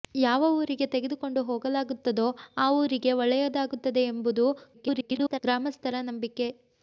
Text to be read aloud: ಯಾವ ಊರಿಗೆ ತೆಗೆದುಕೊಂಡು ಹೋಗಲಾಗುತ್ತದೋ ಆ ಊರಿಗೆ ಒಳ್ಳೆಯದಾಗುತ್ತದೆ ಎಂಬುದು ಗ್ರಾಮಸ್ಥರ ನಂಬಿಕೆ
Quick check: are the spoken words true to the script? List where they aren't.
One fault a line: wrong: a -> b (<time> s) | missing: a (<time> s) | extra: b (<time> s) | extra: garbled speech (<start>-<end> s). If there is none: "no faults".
extra: garbled speech (4.7-5.4 s)